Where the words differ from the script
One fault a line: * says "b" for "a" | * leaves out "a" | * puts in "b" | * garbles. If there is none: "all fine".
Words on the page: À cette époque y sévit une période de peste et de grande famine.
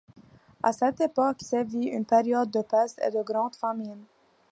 * leaves out "y"